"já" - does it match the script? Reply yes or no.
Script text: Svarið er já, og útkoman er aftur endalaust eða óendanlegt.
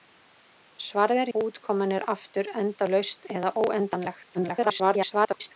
no